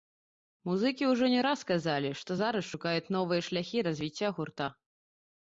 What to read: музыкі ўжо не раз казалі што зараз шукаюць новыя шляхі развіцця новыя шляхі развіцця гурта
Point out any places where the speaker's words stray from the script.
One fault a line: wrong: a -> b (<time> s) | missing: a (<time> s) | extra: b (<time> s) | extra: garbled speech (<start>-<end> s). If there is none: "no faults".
missing: новыя шляхі развіцця (4.3 s)